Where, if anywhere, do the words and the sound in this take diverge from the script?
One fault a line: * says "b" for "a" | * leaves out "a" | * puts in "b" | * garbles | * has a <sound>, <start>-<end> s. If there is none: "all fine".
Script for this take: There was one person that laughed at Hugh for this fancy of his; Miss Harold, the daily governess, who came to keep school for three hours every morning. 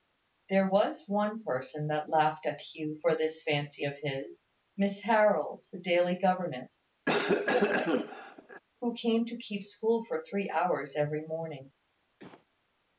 * has a cough, 7.0-8.6 s
* has a cough, 12.2-12.5 s